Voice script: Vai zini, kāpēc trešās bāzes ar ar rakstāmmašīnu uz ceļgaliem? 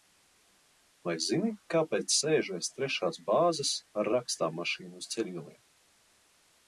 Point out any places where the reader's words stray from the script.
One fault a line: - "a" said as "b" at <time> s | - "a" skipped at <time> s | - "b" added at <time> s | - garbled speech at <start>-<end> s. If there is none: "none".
- "sēžu aiz" added at 2.2 s
- "ar" skipped at 4.1 s